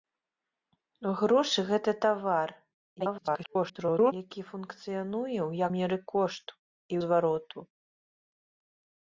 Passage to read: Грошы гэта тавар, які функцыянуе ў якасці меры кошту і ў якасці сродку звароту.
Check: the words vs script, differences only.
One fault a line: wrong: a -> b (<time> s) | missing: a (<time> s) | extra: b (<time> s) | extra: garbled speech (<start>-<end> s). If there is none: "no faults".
extra: garbled speech (3.0-4.1 s)
missing: якасці (5.7 s)
missing: ў якасці сродку (6.9 s)